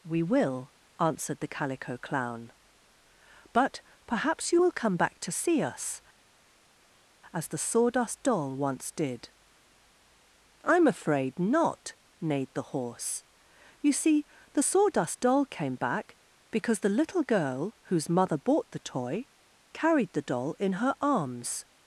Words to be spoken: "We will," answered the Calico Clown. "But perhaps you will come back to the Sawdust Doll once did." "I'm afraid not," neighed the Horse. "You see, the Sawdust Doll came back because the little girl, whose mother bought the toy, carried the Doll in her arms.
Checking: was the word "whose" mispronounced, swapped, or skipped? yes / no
no